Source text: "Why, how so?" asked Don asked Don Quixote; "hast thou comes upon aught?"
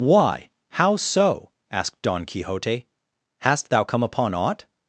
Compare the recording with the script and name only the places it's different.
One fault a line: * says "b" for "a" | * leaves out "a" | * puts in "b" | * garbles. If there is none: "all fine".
* leaves out "asked Don"
* says "come" for "comes"